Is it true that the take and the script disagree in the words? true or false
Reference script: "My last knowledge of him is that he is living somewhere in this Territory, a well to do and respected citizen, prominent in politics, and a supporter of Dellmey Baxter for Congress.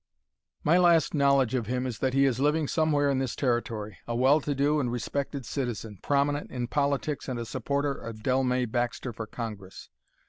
false